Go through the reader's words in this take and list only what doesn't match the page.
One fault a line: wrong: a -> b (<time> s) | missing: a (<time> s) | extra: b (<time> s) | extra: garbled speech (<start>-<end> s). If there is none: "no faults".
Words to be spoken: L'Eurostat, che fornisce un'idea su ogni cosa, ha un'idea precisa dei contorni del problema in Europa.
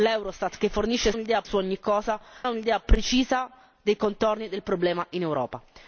no faults